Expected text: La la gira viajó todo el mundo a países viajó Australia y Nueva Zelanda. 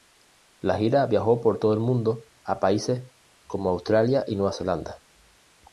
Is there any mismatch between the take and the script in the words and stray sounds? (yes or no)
yes